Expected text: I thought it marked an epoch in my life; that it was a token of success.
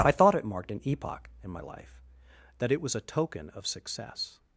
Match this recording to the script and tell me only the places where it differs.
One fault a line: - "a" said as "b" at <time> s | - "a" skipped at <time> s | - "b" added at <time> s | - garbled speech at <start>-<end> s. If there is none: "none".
none